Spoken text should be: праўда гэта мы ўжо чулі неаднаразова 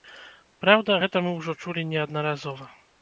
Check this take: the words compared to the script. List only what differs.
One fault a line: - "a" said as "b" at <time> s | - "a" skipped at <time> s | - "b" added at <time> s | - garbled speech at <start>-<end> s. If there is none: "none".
none